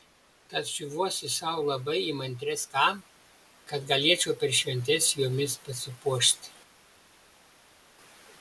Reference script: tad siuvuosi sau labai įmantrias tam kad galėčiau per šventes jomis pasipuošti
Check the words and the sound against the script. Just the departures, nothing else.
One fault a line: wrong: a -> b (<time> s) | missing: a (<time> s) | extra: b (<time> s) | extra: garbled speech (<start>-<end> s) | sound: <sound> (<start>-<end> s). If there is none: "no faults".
no faults